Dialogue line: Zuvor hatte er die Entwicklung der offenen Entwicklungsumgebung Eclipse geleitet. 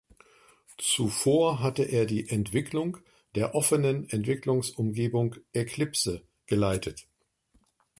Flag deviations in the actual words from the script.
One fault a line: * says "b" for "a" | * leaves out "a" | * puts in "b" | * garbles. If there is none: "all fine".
all fine